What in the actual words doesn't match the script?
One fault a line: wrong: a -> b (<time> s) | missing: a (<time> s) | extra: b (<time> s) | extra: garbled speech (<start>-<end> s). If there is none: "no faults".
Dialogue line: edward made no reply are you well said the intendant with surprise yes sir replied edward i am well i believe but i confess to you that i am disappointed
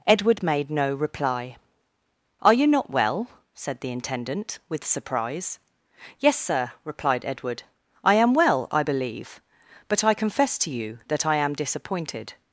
extra: not (2.6 s)